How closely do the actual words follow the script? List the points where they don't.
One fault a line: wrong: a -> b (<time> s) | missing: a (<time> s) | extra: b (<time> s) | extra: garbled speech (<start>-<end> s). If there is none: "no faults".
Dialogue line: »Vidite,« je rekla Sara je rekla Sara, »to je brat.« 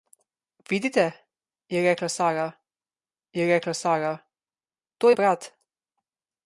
no faults